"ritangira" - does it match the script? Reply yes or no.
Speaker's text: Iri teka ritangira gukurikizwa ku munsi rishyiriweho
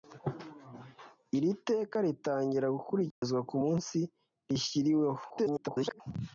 yes